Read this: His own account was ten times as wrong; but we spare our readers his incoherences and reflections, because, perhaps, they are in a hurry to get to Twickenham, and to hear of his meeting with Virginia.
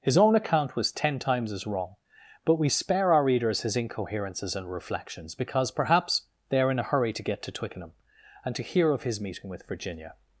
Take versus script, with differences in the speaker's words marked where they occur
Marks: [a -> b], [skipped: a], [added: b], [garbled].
His own account was ten times as wrong; but we spare our readers his incoherences and reflections, because, perhaps, they are in a hurry to get to Twickenham, and to hear of his meeting with Virginia.